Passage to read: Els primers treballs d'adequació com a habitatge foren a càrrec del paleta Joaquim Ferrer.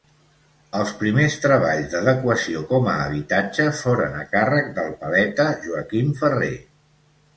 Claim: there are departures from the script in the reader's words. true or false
false